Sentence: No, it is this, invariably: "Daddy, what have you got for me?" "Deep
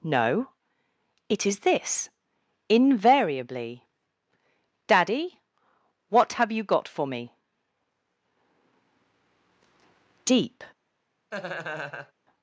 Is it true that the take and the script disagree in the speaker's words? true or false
false